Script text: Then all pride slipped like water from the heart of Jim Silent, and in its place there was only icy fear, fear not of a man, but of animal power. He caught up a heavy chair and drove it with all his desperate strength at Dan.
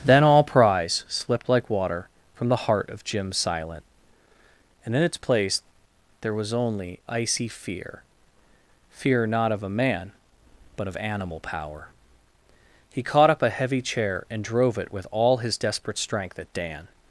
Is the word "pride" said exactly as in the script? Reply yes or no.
no